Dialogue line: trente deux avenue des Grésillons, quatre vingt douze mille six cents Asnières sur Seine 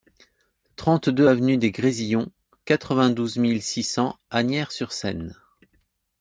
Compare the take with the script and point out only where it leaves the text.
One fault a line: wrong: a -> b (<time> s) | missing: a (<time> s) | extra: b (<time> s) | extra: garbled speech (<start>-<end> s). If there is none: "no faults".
no faults